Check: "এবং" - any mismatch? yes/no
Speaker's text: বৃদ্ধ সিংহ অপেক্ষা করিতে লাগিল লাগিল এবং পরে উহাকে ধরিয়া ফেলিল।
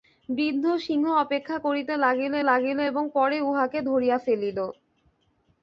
no